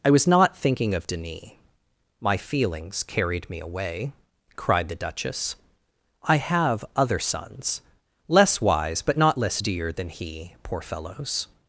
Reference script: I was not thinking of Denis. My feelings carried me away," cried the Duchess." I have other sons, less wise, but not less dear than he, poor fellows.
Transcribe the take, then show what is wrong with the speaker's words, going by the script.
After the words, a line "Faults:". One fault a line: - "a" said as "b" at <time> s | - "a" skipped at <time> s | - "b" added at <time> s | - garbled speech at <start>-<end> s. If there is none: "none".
I was not thinking of Denis. My feelings carried me away," cried the Duchess." I have other sons, less wise, but not less dear than he, poor fellows.
Faults:
none